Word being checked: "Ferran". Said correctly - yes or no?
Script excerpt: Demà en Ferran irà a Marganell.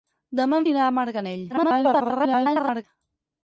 no